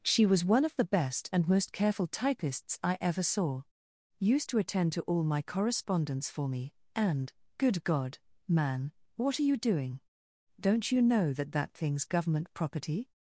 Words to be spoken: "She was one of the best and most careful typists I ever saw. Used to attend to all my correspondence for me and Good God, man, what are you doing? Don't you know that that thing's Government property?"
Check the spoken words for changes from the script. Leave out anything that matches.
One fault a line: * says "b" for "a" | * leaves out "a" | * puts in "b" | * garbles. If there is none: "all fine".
all fine